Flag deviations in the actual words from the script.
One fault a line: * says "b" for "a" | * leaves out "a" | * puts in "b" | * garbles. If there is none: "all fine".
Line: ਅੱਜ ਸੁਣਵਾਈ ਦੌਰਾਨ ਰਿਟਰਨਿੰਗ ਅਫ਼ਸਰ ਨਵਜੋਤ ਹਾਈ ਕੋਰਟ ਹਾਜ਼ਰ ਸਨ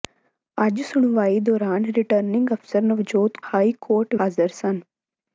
all fine